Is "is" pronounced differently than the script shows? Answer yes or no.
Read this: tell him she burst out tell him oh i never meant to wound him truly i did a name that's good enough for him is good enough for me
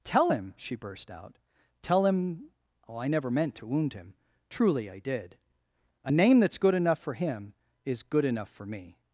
no